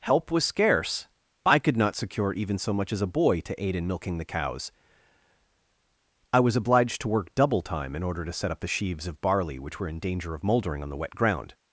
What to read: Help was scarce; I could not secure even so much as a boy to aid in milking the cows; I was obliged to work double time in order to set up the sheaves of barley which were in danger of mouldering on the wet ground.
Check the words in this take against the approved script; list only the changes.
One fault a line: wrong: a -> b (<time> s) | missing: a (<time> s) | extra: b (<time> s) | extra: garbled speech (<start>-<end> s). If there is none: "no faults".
no faults